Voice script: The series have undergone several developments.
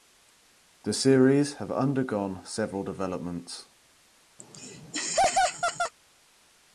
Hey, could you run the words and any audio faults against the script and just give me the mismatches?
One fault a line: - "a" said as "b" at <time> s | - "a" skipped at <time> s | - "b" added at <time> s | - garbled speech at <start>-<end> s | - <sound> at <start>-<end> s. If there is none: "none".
- laugh at 4.4-5.9 s